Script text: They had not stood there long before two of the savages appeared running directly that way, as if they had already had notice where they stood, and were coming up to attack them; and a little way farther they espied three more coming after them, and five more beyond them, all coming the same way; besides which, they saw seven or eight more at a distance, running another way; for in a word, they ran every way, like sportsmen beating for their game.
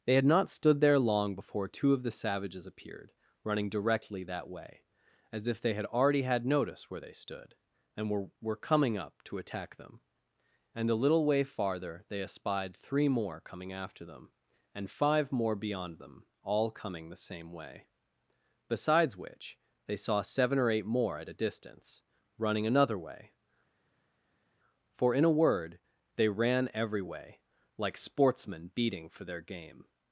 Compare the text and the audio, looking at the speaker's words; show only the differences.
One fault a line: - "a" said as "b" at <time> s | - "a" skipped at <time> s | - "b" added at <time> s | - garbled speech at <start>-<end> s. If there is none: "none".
- "were" added at 8.4 s